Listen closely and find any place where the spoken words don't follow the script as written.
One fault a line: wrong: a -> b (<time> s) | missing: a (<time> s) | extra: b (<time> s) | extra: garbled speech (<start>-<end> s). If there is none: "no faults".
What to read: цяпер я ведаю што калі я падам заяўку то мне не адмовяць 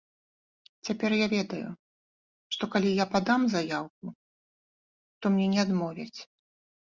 no faults